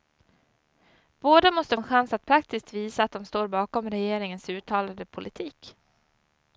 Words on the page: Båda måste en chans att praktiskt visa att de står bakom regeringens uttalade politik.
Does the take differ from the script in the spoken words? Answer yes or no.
no